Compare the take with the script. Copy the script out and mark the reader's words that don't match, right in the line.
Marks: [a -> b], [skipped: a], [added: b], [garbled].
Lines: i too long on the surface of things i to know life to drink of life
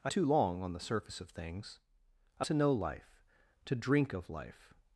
i too long on the surface of things i to know life to drink of life